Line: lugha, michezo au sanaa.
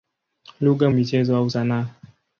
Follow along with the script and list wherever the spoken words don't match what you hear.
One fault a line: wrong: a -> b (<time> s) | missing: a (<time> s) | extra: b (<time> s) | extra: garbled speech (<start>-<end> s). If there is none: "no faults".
no faults